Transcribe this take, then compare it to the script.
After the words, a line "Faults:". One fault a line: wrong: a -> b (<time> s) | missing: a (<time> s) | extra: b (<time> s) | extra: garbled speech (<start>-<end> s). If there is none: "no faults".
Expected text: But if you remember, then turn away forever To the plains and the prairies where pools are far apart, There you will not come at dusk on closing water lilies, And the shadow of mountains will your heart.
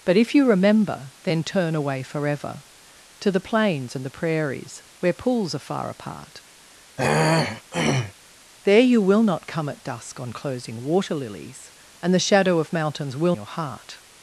But if you remember, then turn away forever To the plains and the prairies where pools are far apart, There you will not come at dusk on closing water lilies, And the shadow of mountains will your heart.
Faults:
no faults